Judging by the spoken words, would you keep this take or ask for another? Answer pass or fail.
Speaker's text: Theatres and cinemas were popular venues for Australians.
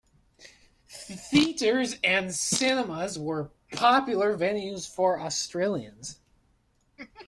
pass